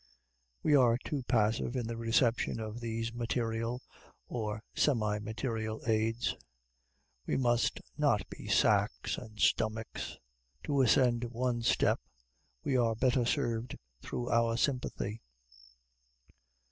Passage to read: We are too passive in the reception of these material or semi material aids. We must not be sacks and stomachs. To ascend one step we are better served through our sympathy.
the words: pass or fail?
pass